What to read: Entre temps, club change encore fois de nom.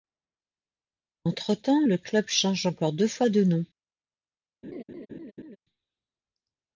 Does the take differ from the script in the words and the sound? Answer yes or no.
yes